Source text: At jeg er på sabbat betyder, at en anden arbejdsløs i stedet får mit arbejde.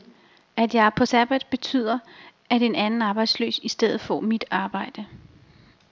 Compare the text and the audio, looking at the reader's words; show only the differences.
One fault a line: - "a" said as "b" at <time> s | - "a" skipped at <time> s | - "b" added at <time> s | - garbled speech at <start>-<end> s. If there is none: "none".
none